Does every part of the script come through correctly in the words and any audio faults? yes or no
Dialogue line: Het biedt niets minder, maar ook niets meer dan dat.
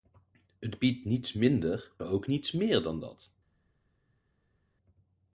no